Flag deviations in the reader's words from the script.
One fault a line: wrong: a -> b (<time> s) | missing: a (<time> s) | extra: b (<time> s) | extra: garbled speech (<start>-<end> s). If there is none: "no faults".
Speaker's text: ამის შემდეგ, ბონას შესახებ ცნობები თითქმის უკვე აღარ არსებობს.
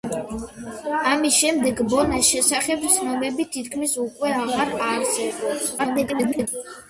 extra: garbled speech (5.8-6.5 s)